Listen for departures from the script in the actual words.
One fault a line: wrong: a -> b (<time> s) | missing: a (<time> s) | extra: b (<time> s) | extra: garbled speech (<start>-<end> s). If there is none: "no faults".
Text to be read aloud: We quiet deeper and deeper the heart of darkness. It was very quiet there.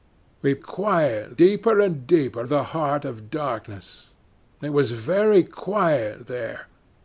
no faults